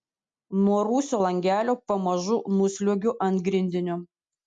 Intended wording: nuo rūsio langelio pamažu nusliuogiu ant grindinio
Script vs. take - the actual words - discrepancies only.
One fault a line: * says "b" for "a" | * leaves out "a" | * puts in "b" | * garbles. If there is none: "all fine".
all fine